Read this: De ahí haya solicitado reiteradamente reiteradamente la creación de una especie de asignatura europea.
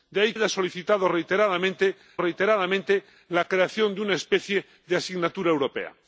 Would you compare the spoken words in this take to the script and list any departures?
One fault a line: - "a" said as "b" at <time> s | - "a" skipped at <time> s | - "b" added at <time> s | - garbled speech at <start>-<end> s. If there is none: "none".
none